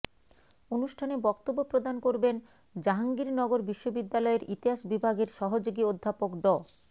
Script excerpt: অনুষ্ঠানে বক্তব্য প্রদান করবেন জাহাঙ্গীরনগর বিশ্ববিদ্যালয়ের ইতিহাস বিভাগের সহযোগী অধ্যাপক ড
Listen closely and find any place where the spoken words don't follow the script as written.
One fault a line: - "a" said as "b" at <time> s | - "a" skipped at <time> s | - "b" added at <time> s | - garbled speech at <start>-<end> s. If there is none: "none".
none